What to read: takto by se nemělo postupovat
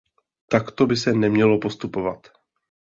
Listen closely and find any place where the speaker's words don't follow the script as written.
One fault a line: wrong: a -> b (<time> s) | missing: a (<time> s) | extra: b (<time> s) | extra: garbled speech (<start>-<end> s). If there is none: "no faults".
no faults